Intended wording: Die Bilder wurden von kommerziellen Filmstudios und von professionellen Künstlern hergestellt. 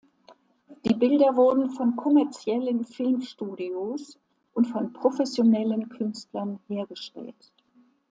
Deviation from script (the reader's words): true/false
false